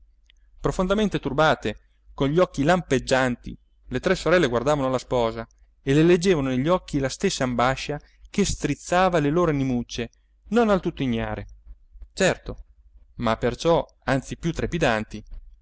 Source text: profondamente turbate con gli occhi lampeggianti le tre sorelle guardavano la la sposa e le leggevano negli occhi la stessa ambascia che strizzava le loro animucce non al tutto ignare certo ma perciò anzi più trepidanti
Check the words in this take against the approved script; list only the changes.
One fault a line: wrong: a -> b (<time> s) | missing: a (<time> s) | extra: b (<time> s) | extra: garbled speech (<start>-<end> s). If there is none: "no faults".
missing: la (5.0 s)